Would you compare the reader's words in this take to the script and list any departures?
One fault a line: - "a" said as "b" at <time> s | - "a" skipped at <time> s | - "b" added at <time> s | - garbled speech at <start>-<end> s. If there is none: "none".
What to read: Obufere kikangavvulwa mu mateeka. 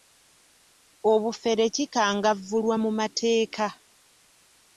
none